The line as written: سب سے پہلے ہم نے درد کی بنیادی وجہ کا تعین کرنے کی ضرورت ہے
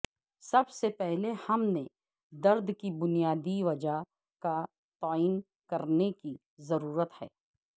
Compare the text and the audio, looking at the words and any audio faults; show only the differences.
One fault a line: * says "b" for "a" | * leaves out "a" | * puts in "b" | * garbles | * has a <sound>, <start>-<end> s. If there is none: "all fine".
all fine